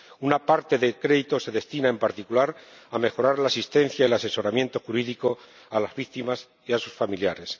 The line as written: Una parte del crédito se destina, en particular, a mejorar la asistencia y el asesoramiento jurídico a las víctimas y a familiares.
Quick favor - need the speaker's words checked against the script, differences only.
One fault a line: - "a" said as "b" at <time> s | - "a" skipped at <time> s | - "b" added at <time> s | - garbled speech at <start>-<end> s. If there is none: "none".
- "sus" added at 6.8 s